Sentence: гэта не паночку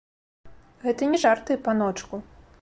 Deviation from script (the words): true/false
true